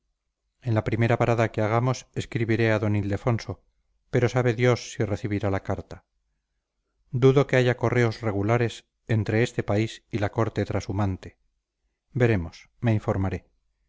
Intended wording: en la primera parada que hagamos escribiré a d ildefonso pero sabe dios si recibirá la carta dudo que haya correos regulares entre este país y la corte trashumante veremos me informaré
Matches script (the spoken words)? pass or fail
pass